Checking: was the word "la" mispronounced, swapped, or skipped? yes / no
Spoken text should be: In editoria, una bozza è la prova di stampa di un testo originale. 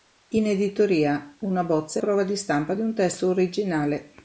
yes